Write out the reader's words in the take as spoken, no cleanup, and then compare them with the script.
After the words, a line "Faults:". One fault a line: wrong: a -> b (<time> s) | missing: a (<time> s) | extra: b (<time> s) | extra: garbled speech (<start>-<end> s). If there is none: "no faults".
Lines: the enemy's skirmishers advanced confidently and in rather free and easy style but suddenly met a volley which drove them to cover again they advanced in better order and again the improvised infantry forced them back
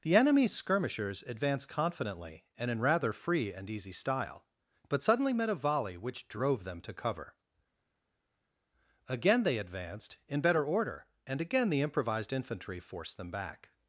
the enemy's skirmishers advanced confidently and in rather free and easy style but suddenly met a volley which drove them to cover again they advanced in better order and again the improvised infantry forced them back
Faults:
no faults